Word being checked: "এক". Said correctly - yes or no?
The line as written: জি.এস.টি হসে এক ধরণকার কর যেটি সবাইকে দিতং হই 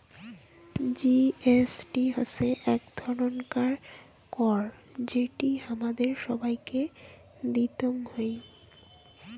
yes